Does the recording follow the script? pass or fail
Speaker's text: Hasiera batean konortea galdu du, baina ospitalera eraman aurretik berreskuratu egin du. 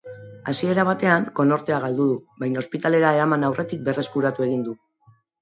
pass